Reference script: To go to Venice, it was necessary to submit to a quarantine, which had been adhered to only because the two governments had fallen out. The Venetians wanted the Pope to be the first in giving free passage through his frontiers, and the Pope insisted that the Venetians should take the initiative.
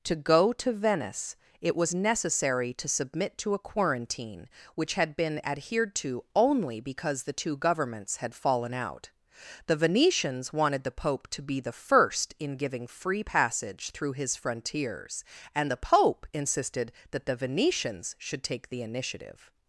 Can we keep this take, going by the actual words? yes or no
yes